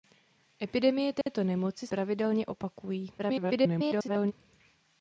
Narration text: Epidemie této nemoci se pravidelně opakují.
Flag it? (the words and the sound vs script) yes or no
yes